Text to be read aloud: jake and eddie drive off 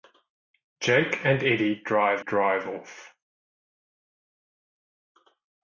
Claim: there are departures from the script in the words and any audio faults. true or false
true